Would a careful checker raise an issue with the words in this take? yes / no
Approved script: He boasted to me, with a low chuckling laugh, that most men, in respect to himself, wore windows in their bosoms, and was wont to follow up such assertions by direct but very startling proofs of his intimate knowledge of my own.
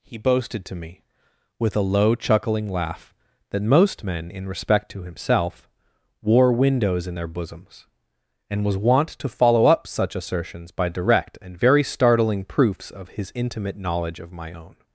yes